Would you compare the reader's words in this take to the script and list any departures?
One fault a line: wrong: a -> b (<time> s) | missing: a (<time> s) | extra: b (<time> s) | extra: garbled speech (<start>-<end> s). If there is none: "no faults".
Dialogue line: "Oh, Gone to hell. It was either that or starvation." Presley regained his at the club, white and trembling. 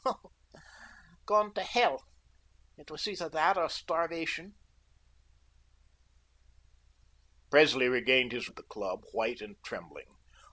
no faults